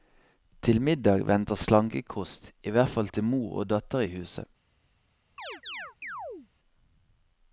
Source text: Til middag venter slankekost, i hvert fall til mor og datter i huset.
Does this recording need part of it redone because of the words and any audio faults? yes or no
yes